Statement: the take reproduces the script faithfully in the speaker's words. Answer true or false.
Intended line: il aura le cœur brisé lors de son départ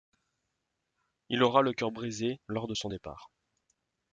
true